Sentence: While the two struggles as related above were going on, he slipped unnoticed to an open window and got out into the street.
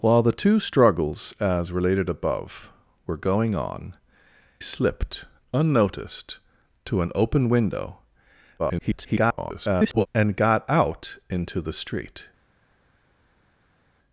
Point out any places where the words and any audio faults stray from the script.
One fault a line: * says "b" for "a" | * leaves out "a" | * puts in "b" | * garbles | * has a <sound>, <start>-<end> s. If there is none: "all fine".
* leaves out "he"
* garbles